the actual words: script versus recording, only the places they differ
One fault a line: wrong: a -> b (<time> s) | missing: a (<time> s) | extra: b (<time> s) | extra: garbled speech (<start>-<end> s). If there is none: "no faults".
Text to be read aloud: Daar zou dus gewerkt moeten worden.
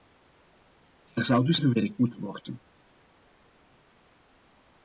no faults